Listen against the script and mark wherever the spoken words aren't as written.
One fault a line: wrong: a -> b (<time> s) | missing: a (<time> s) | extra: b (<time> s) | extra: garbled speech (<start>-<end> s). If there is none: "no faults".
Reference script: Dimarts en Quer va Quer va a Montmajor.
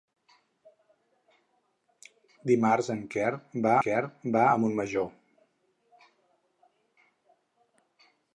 no faults